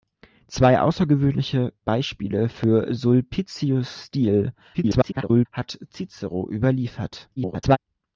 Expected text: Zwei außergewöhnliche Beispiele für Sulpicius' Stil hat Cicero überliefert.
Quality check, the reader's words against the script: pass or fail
fail